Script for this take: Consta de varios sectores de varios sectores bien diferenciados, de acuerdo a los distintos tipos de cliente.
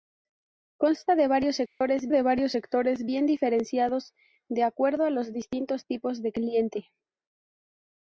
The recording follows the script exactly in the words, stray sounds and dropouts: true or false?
false